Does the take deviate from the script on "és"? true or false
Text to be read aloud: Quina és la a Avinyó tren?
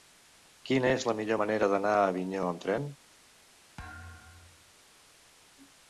false